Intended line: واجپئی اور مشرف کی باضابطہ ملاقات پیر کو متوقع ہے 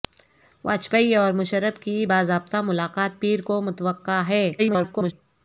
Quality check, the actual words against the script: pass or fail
fail